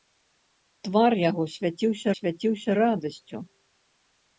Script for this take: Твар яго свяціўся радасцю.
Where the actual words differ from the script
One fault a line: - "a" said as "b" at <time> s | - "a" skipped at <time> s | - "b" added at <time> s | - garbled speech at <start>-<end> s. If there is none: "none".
- "свяціўся" added at 2.2 s